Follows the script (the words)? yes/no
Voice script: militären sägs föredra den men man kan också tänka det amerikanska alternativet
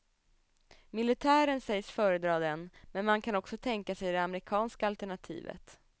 no